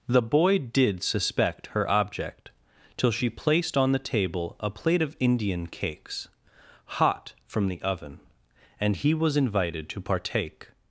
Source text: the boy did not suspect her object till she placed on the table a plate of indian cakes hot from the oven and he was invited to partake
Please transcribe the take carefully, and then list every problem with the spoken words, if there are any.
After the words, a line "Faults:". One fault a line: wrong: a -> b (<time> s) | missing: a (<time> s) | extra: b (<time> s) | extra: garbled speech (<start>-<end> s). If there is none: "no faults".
the boy did suspect her object till she placed on the table a plate of indian cakes hot from the oven and he was invited to partake
Faults:
missing: not (1.0 s)